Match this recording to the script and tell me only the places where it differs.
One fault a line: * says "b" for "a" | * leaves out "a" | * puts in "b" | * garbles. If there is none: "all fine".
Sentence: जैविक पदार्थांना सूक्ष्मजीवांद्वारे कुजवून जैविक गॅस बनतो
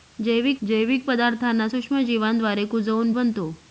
* puts in "जैविक"
* leaves out "जैविक गॅस"